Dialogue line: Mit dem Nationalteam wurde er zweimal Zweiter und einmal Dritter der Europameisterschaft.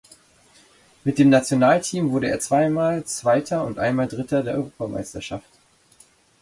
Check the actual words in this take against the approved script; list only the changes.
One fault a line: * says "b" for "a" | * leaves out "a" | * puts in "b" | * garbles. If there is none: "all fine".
all fine